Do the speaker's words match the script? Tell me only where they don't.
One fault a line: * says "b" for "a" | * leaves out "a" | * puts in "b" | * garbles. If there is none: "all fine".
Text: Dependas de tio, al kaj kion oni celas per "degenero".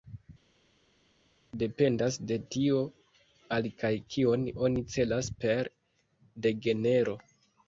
all fine